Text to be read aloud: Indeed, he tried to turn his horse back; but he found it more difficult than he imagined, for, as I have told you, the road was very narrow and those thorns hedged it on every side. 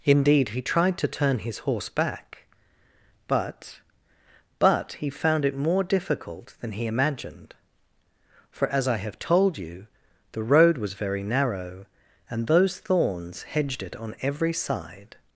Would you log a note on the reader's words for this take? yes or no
yes